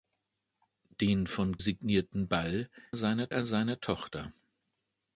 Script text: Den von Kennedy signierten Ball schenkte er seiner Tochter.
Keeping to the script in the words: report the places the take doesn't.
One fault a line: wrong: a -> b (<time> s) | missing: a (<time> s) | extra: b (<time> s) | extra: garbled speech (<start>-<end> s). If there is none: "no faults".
missing: Kennedy (1.6 s)
wrong: schenkte -> seiner (2.9 s)